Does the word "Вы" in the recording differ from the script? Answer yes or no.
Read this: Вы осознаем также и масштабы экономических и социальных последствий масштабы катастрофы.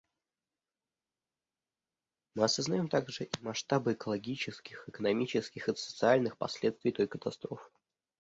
yes